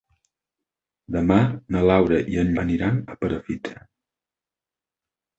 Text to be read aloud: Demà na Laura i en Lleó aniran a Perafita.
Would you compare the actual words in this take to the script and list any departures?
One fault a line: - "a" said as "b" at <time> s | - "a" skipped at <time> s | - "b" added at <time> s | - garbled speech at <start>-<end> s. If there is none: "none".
- "Lleó" skipped at 2.5 s